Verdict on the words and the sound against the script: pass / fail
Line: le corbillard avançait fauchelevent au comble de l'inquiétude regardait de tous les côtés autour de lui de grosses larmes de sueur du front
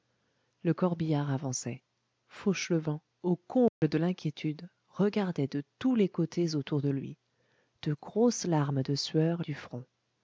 fail